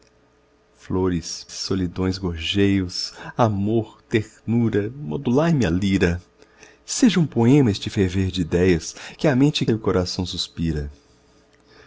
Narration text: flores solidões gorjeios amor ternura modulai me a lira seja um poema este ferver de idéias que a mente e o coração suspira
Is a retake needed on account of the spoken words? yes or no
no